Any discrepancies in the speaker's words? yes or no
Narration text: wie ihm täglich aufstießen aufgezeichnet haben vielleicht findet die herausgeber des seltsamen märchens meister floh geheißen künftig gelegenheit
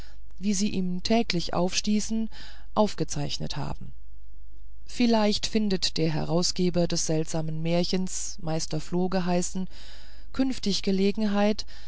yes